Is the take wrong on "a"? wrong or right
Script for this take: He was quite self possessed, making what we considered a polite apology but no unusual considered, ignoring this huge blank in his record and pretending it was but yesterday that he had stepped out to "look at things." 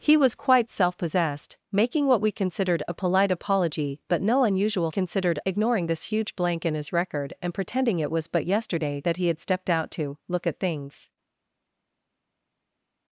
right